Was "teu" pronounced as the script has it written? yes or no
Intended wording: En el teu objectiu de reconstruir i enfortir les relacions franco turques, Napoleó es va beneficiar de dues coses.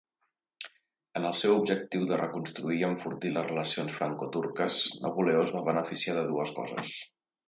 no